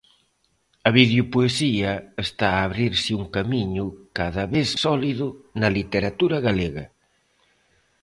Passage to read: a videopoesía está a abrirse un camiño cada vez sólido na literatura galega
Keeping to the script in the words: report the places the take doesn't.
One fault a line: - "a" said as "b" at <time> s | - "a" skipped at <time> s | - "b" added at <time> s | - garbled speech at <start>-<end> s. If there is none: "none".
none